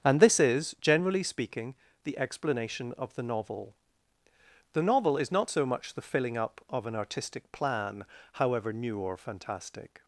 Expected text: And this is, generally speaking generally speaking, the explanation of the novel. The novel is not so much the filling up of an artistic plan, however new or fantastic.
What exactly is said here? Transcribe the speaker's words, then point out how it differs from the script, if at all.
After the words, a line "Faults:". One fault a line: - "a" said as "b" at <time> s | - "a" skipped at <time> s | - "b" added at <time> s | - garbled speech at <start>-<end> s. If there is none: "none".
And this is, generally speaking, the explanation of the novel. The novel is not so much the filling up of an artistic plan, however new or fantastic.
Faults:
- "generally speaking" skipped at 1.8 s